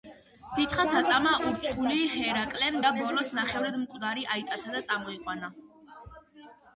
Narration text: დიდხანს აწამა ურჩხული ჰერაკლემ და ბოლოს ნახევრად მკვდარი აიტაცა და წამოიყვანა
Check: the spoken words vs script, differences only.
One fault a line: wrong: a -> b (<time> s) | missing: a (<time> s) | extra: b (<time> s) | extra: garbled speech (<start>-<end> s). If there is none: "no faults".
no faults